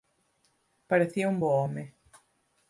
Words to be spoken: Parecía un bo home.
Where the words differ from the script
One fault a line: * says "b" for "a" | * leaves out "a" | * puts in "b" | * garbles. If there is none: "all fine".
all fine